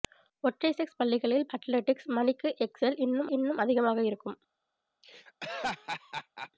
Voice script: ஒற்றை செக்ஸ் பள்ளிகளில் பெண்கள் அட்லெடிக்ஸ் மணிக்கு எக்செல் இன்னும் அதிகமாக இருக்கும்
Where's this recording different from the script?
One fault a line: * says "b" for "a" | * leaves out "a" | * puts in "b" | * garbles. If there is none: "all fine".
* leaves out "பெண்கள்"
* puts in "இன்னும்"